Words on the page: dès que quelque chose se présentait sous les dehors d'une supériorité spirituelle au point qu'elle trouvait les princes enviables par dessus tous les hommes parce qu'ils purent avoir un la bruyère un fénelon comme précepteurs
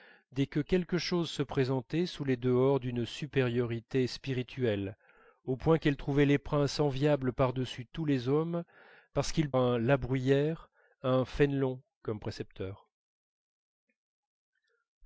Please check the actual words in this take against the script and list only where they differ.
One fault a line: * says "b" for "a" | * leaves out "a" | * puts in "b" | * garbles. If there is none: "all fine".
* leaves out "purent avoir"